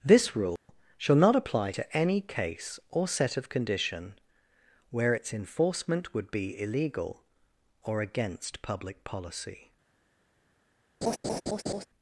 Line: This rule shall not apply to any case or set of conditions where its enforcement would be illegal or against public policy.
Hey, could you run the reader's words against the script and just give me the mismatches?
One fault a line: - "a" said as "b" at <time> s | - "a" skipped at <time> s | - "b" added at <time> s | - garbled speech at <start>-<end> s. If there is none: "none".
- "conditions" said as "condition" at 3.5 s